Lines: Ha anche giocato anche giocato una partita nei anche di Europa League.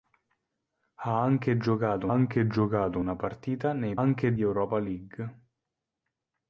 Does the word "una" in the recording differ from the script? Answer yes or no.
no